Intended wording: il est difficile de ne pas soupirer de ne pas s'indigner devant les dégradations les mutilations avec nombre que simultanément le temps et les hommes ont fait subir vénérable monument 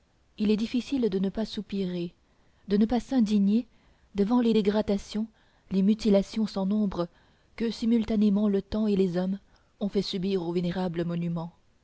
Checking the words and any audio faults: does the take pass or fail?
fail